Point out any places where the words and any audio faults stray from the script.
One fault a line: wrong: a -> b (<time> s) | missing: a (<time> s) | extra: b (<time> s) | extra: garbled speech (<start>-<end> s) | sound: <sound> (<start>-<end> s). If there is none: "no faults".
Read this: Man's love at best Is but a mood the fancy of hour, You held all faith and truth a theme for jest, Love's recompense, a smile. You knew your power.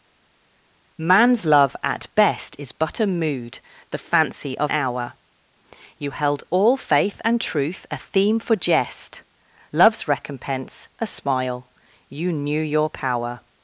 no faults